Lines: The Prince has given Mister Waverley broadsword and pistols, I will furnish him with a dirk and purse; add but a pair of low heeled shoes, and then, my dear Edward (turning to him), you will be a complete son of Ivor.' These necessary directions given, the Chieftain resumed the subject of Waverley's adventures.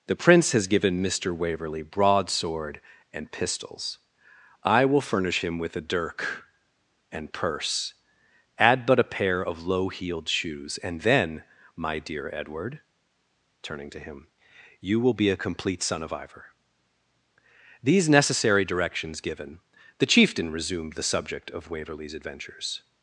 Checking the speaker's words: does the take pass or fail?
pass